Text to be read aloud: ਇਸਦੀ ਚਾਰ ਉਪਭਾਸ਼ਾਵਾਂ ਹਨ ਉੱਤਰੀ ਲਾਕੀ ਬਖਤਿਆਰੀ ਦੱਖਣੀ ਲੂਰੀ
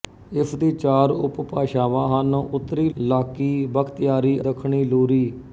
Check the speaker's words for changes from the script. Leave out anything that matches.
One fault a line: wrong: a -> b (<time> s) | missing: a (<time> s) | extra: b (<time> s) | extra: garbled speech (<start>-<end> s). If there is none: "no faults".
no faults